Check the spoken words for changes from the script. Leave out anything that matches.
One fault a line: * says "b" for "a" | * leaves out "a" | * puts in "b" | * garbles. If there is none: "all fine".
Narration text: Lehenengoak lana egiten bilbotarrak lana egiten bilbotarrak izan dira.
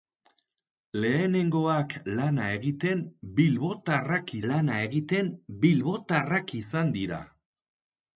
all fine